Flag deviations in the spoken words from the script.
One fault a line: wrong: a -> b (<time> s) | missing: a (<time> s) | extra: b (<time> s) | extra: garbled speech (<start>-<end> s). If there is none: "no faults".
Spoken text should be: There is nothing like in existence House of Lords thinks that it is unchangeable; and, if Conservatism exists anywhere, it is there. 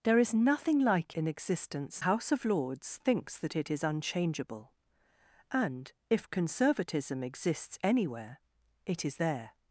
no faults